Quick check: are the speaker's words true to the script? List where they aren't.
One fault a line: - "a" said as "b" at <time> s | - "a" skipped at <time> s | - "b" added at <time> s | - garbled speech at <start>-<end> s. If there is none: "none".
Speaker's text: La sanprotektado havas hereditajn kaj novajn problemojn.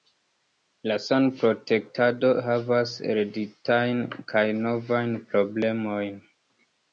none